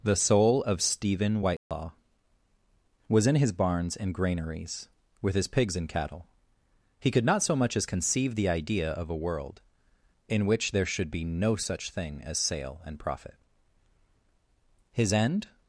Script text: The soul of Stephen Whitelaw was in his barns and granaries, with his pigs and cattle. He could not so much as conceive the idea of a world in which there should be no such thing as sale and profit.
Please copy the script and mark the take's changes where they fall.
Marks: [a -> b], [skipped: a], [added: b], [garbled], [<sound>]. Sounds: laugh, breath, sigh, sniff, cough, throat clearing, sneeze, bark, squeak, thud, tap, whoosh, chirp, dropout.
The soul of Stephen Whitelaw [dropout] was in his barns and granaries, with his pigs and cattle. He could not so much as conceive the idea of a world in which there should be no such thing as sale and profit. [added: His end]